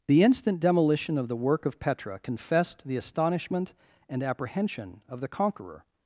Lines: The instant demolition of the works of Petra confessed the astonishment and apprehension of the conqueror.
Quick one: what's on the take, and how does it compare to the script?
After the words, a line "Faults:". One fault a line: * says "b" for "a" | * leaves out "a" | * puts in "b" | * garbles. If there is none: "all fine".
The instant demolition of the work of Petra confessed the astonishment and apprehension of the conqueror.
Faults:
* says "work" for "works"